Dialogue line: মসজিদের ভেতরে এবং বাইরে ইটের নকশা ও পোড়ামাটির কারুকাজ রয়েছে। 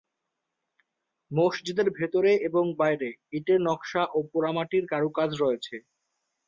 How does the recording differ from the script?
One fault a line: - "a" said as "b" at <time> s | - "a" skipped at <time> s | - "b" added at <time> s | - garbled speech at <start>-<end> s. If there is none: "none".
none